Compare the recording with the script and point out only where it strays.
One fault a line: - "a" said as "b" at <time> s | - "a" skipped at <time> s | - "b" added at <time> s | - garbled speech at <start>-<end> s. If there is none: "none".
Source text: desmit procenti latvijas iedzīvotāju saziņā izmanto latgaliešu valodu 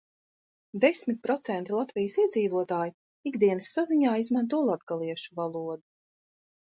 - "ikdienas" added at 3.3 s